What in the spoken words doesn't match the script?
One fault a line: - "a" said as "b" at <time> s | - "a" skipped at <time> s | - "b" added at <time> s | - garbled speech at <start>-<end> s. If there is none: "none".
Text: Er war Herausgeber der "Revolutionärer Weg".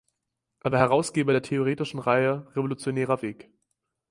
- "theoretischen Reihe" added at 1.4 s